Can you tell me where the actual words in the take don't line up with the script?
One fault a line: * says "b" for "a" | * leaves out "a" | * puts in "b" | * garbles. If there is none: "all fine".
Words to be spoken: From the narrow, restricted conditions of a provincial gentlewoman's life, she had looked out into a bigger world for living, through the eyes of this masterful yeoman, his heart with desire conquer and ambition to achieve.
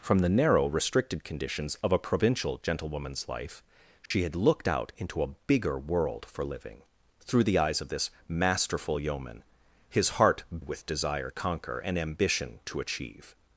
all fine